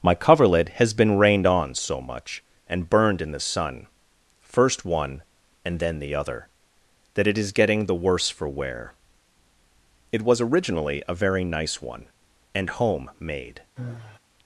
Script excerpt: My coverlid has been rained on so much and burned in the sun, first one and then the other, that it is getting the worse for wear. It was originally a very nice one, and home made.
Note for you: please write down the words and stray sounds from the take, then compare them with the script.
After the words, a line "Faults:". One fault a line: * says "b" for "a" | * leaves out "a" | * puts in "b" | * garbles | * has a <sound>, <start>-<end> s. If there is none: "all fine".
My coverlid has been rained on so much and burned in the sun, first one and then the other, that it is getting the worse for wear. It was originally a very nice one, and home made.
Faults:
* has a sigh, 13.8-14.2 s